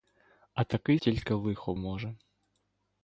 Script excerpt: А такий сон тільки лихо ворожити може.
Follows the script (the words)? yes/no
no